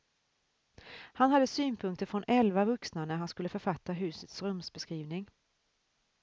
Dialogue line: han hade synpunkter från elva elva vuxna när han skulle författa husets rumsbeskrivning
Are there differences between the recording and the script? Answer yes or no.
yes